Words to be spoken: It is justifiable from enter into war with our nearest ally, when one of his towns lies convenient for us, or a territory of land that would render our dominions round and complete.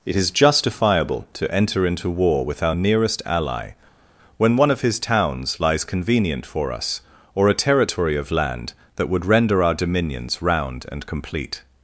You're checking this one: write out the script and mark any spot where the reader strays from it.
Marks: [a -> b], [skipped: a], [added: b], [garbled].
It is justifiable [from -> to] enter into war with our nearest ally, when one of his towns lies convenient for us, or a territory of land that would render our dominions round and complete.